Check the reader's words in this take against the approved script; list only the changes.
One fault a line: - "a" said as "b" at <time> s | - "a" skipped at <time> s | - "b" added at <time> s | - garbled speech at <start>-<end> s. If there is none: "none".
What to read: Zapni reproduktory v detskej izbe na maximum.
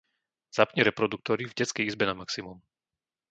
none